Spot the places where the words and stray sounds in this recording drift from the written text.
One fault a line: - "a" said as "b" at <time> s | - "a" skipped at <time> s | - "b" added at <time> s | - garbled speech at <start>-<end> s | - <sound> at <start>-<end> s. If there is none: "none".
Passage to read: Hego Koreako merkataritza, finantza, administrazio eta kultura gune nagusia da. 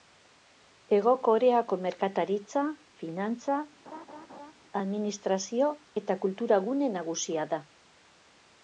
- laugh at 3.9-4.5 s